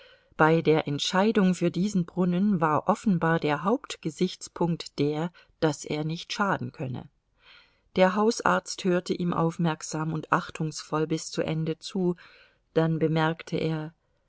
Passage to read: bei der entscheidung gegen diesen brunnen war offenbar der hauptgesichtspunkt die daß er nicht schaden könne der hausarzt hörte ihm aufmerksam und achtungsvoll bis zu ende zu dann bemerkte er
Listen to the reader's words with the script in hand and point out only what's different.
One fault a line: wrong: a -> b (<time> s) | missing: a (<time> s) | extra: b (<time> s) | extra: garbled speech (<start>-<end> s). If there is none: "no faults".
wrong: gegen -> für (1.5 s)
wrong: die -> der (5.0 s)